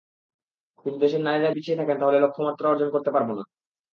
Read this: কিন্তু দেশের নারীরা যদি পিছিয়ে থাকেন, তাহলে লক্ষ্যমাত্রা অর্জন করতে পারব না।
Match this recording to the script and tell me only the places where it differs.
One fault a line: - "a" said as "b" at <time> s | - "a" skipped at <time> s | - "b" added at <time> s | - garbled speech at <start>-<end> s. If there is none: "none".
- "যদি" skipped at 1.5 s